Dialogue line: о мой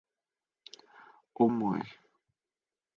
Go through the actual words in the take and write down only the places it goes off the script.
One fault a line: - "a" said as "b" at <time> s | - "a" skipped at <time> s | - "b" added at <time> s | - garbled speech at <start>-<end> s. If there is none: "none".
none